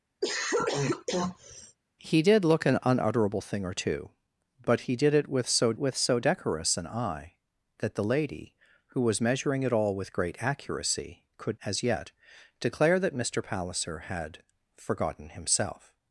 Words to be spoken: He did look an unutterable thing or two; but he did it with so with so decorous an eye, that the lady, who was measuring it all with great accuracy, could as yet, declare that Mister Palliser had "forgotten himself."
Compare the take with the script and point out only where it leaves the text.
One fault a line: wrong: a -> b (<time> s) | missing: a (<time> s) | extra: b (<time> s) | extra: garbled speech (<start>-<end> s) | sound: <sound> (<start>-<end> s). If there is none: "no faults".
sound: cough (0.2-1.8 s)